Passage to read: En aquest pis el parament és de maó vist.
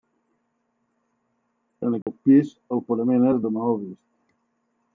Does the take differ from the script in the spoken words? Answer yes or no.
no